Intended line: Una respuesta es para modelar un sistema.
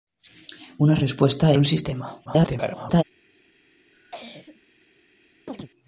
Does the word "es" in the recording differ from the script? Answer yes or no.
yes